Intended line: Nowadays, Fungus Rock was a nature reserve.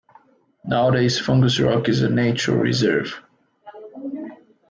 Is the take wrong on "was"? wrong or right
wrong